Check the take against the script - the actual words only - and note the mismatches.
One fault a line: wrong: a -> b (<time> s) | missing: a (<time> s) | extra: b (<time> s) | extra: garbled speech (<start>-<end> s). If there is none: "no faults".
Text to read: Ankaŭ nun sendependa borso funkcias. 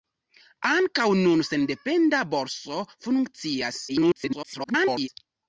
extra: garbled speech (3.9-5.1 s)